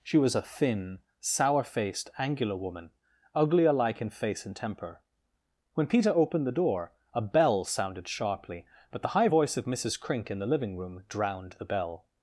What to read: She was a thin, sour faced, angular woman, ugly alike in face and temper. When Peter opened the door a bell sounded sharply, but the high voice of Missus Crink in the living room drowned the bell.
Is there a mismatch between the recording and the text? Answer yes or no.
no